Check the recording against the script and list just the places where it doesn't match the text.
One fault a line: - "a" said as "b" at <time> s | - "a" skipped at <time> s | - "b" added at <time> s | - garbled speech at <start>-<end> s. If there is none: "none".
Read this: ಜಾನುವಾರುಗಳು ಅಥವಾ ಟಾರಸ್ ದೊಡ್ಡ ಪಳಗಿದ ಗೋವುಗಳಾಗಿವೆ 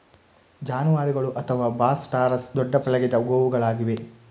- "ಬಾಸ್" added at 1.8 s